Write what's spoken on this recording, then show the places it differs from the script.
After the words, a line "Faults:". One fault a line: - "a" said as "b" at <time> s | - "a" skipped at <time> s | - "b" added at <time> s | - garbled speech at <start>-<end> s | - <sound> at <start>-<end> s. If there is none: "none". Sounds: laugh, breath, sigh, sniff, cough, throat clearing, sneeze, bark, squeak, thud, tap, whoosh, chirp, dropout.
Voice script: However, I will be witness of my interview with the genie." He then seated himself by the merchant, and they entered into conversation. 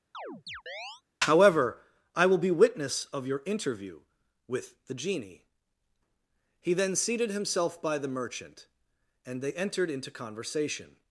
However, I will be witness of your interview with the genie." He then seated himself by the merchant, and they entered into conversation.
Faults:
- chirp at 0.1-1.0 s
- "my" said as "your" at 3.3 s